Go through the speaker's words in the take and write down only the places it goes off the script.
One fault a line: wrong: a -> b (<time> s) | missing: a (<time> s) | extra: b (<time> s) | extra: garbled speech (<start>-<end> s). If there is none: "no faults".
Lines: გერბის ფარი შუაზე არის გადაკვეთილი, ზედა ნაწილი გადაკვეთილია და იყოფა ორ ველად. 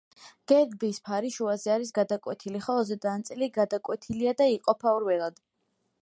extra: ხოლო (2.7 s)